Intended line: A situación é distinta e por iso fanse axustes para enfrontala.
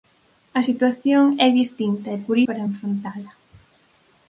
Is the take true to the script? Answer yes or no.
no